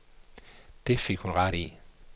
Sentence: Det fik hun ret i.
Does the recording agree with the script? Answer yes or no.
yes